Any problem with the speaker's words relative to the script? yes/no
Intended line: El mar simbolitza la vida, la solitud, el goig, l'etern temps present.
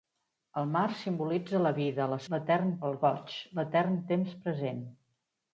yes